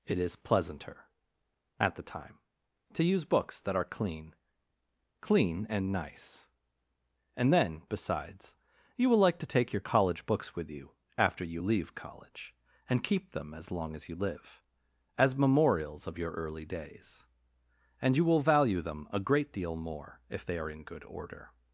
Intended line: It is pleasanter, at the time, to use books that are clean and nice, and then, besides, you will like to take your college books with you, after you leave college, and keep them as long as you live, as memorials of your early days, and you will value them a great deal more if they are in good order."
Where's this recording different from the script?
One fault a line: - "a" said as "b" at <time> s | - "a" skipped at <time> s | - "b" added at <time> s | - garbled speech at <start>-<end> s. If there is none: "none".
- "clean" added at 5.2 s